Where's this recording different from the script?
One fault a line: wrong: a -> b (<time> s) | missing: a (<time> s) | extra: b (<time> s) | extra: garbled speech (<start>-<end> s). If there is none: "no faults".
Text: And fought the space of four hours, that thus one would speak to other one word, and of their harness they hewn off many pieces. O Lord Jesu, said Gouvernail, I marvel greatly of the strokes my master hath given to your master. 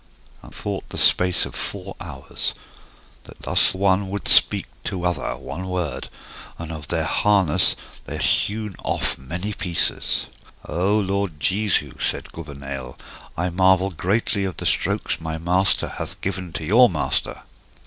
no faults